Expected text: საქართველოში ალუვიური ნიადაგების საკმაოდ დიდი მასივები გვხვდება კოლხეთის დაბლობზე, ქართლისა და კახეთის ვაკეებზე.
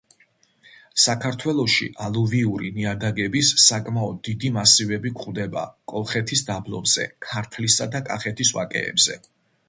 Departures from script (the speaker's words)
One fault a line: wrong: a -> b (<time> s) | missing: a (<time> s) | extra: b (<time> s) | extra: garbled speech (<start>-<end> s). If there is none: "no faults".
no faults